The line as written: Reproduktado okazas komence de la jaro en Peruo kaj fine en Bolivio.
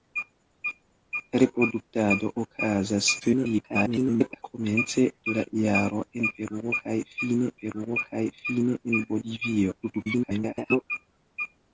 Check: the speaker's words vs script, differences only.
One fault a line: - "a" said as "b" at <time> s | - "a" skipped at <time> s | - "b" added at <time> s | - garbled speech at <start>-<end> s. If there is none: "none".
- garbled speech at 3.2-4.4 s
- "Peruo kaj fine" added at 7.6 s
- garbled speech at 9.8-10.8 s